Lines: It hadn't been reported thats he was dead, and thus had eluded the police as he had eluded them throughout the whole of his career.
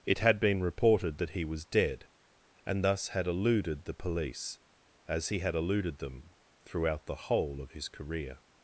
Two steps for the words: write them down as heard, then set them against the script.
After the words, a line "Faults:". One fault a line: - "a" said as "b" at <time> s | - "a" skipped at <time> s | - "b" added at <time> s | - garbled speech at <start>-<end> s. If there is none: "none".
It had been reported that he was dead, and thus had eluded the police as he had eluded them throughout the whole of his career.
Faults:
- "hadn't" said as "had" at 0.2 s
- "thats" said as "that" at 1.2 s